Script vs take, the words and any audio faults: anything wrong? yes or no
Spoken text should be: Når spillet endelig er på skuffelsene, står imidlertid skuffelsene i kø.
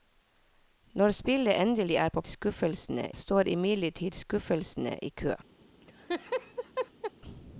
yes